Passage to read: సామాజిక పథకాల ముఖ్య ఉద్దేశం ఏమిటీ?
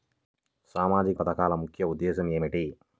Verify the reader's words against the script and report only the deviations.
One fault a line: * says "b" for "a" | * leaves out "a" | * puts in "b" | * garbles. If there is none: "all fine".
all fine